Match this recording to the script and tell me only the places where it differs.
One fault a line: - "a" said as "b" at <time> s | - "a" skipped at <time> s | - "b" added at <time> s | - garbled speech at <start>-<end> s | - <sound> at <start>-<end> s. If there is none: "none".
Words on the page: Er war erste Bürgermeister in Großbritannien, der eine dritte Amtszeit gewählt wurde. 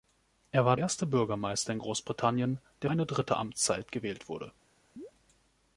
- chirp at 5.0-5.1 s